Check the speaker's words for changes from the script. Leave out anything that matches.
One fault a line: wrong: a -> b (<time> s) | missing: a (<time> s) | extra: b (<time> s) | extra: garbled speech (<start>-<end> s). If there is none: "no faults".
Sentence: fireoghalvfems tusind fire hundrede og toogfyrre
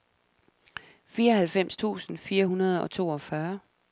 no faults